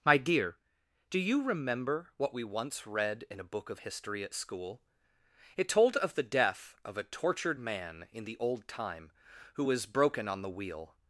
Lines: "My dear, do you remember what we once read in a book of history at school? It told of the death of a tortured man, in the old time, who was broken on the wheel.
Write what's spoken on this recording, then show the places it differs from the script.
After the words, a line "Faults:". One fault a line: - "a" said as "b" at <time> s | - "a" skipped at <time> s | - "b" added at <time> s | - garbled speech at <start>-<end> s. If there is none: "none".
"My dear, do you remember what we once read in a book of history at school? It told of the death of a tortured man, in the old time, who was broken on the wheel.
Faults:
none